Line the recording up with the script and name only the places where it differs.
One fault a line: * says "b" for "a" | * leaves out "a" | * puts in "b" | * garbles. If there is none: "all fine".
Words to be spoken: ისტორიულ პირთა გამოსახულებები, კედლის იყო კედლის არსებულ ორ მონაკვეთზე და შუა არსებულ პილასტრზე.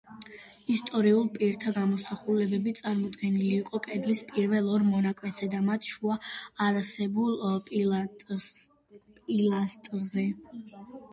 * says "წარმოდგენილი" for "კედლის"
* says "პირველ" for "არსებულ"
* puts in "მათ"